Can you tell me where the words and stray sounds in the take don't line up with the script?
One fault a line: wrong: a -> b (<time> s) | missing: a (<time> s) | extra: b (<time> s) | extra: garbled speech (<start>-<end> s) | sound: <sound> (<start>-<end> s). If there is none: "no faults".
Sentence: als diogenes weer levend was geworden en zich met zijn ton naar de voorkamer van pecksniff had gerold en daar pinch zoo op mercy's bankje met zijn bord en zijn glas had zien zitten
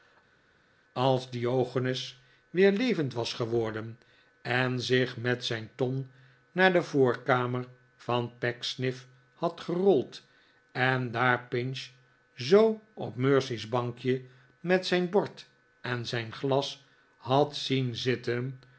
no faults